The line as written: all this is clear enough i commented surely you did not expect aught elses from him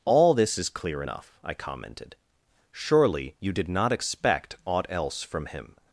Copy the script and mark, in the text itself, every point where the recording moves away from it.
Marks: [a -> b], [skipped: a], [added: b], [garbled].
all this is clear enough i commented surely you did not expect aught [elses -> else] from him